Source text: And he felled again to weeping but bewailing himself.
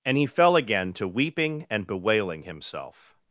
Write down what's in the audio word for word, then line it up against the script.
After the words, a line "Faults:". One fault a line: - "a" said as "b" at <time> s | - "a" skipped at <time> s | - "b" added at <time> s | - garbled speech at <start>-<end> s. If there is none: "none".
And he fell again to weeping and bewailing himself.
Faults:
- "felled" said as "fell" at 0.2 s
- "but" said as "and" at 1.7 s